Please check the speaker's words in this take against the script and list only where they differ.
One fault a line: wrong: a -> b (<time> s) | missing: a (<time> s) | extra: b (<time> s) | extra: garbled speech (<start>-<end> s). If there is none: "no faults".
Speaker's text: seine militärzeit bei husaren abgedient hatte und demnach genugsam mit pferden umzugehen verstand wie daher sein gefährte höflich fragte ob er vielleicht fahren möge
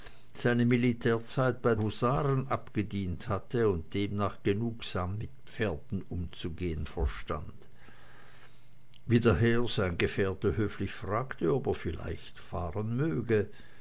no faults